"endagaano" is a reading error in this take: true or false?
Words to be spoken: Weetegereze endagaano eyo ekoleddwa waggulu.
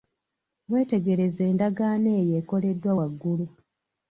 false